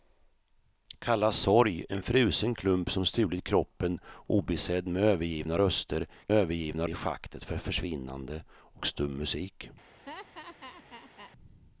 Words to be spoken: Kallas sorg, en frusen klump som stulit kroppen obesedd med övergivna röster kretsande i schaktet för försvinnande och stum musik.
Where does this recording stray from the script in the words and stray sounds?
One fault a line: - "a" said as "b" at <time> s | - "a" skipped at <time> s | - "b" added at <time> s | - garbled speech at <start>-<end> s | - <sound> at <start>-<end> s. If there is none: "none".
- "kretsande" said as "övergivna" at 6.3 s
- laugh at 10.1-11.3 s